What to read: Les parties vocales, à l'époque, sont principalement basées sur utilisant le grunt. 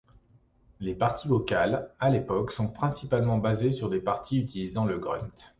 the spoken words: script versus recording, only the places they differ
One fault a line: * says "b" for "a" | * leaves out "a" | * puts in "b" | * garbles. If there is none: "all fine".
* puts in "des parties"